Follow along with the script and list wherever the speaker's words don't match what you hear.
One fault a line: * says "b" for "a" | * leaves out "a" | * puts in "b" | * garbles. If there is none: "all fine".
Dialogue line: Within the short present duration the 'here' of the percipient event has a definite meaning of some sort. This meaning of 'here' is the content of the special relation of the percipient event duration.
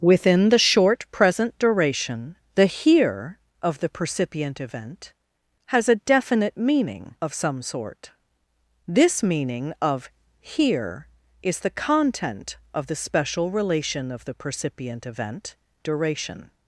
all fine